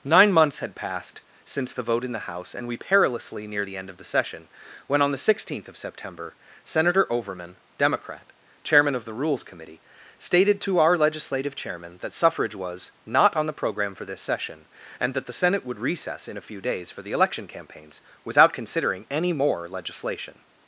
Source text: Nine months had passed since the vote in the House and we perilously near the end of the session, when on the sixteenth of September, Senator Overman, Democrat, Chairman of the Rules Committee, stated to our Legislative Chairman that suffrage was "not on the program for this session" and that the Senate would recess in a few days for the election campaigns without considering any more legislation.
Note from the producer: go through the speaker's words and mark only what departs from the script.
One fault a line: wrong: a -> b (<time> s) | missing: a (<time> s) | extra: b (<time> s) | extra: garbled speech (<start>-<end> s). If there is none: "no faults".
no faults